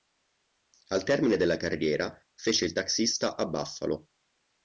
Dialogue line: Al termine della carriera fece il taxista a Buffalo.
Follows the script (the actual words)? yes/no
yes